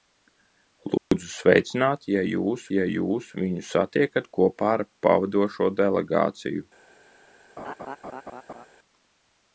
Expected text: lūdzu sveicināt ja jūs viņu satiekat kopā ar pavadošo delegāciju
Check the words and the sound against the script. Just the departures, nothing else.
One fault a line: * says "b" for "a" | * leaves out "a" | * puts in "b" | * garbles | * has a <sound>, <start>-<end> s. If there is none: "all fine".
* has a dropout, 1.0-1.1 s
* puts in "ja jūs"
* has a laugh, 7.6-8.7 s